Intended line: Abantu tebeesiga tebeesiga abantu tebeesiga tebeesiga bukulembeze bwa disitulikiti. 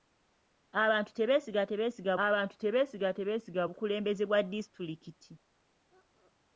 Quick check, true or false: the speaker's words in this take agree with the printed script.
true